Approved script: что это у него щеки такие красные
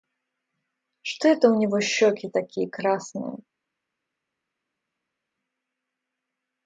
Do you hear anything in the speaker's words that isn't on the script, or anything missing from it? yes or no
no